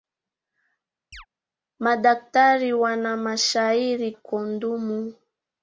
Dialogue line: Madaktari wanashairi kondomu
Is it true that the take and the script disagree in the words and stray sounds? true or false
true